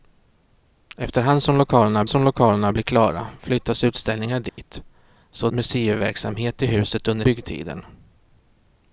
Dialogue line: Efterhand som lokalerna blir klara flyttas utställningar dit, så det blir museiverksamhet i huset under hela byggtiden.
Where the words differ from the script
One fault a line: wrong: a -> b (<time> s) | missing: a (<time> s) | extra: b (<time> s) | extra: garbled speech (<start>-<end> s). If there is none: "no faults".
extra: som lokalerna (2.1 s)
missing: det blir (5.5 s)
missing: hela (7.2 s)